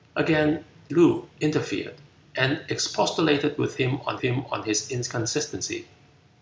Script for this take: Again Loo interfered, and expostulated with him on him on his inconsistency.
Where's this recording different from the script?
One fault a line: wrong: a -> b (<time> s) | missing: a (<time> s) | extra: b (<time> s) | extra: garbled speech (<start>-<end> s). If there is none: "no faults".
no faults